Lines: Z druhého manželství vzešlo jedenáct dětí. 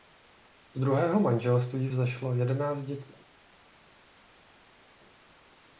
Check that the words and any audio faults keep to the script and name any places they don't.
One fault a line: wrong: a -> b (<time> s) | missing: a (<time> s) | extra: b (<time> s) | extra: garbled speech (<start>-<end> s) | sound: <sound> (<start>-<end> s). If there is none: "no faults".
no faults